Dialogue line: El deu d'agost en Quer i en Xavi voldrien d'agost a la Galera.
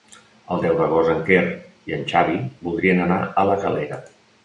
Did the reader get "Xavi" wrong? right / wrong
right